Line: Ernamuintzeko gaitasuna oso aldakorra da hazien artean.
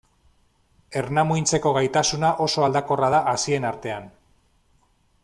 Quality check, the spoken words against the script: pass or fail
pass